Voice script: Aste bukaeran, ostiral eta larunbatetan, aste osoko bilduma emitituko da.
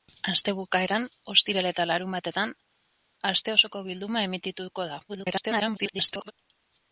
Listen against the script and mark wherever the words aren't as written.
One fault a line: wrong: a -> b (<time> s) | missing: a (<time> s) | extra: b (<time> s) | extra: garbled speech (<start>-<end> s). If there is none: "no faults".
extra: garbled speech (5.1-6.3 s)